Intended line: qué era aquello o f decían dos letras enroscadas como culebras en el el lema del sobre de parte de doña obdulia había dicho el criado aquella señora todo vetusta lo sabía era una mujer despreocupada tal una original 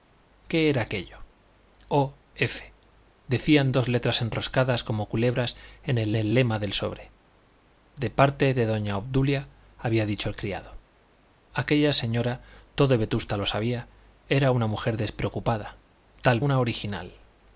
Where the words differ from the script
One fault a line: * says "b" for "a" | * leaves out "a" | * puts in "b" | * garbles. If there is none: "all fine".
all fine